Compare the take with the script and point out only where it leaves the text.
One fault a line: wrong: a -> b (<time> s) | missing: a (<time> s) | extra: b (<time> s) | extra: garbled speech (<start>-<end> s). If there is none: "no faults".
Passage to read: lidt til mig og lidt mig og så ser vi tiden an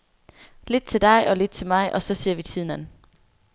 wrong: mig -> dig (1.0 s)
extra: til (1.5 s)